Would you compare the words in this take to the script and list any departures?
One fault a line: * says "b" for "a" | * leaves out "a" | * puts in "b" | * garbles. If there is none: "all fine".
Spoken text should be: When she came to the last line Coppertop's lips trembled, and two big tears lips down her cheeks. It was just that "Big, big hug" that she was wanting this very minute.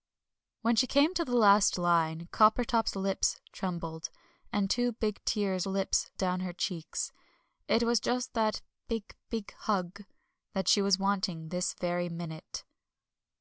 all fine